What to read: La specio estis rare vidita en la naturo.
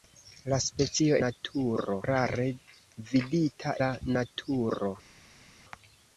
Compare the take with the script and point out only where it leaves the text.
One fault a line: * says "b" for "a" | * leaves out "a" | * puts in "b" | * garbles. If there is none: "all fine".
* says "naturo" for "estis"
* leaves out "en"